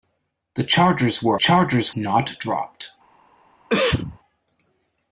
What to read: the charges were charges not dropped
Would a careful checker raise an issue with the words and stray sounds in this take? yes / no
yes